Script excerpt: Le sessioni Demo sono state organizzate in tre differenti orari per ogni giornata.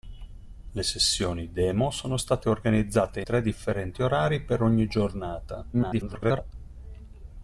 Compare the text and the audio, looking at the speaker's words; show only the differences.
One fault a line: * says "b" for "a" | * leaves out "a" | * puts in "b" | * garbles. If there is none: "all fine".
* leaves out "in"
* garbles